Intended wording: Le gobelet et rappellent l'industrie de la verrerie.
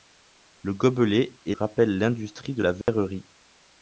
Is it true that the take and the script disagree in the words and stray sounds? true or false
true